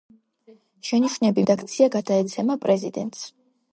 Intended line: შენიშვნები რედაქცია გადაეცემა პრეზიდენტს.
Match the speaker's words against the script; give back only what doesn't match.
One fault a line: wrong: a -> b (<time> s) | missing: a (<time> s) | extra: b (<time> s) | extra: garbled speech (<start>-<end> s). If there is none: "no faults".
no faults